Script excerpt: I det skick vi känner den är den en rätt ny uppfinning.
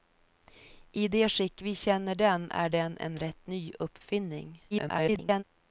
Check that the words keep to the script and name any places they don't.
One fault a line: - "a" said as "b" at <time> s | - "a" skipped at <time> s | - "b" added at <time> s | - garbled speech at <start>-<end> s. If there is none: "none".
- garbled speech at 4.7-5.4 s